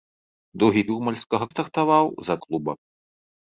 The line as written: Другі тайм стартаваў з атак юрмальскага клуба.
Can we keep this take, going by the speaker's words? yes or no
no